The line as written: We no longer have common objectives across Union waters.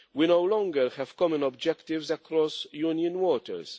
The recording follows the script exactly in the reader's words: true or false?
true